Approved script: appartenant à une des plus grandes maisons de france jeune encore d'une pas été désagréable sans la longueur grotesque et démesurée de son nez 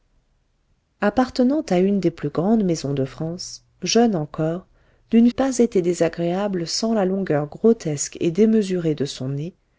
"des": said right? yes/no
yes